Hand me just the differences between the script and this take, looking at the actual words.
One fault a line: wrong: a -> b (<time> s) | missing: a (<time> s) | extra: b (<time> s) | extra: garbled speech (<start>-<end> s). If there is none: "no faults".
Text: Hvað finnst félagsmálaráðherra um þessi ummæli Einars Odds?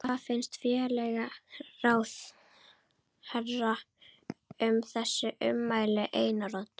no faults